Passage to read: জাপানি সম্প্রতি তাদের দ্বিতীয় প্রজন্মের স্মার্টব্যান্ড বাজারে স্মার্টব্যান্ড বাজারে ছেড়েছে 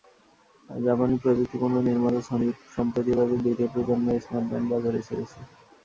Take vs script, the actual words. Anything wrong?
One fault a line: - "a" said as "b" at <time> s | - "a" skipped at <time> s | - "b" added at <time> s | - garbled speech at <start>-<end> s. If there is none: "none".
- "প্রযুক্তিপণ্য নির্মাতা সনি" added at 1.2 s
- "স্মার্টব্যান্ড বাজারে" skipped at 5.0 s